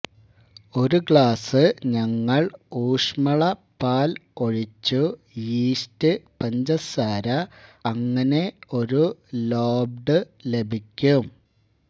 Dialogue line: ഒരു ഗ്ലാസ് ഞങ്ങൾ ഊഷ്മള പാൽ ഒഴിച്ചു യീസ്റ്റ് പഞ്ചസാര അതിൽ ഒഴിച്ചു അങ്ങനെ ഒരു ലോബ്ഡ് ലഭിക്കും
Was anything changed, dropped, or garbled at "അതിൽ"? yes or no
yes